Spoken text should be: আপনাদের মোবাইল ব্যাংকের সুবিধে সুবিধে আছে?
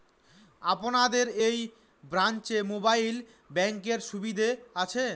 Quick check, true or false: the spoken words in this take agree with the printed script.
false